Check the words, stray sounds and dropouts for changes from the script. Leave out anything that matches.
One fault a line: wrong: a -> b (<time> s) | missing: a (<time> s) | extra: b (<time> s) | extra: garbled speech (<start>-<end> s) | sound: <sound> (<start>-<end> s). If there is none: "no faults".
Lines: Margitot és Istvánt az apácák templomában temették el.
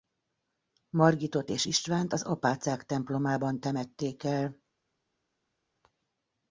no faults